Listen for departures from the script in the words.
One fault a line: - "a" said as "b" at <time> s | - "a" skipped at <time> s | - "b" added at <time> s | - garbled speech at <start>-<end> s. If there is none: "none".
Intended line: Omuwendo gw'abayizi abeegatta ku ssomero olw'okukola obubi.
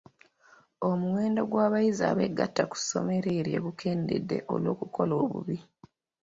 - "eryo gukendedde" added at 3.4 s